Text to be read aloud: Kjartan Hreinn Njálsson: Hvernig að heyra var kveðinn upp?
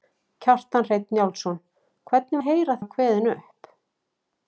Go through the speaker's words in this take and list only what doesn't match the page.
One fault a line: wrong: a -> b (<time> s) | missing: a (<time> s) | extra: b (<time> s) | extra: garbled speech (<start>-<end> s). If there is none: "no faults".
no faults